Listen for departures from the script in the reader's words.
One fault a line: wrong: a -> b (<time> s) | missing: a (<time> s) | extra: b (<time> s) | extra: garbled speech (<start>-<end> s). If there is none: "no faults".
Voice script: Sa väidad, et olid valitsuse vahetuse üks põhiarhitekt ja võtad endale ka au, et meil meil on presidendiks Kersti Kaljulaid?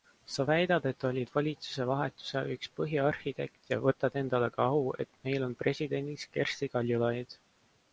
missing: meil (5.5 s)